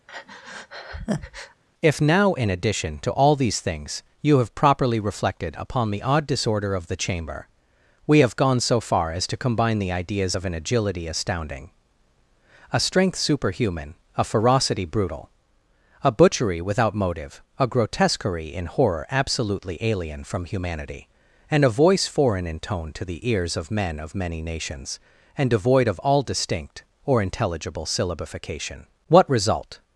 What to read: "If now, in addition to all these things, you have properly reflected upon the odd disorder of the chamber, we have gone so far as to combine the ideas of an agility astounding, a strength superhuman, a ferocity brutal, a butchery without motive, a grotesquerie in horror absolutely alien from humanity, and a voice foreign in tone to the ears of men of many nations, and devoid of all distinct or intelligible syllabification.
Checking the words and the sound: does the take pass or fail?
fail